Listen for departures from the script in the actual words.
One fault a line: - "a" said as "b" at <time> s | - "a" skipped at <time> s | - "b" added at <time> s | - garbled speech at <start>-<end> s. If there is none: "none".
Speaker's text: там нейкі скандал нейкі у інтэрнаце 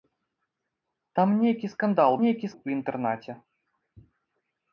none